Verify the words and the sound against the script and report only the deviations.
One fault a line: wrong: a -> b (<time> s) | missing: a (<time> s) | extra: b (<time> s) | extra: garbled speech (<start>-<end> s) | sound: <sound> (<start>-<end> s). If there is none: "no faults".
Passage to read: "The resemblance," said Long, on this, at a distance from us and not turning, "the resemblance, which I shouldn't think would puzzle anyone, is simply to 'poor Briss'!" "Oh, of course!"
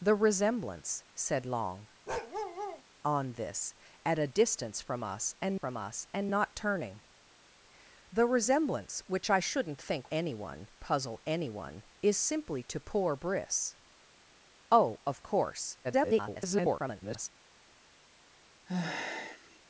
sound: bark (2.1-2.8 s)
extra: from us and (5.5 s)
wrong: would -> anyone (10.1 s)
extra: garbled speech (15.8-17.3 s)
sound: sigh (18.7-19.6 s)